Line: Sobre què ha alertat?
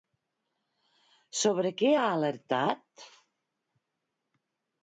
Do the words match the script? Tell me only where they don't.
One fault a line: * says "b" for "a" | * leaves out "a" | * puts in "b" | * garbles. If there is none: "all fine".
all fine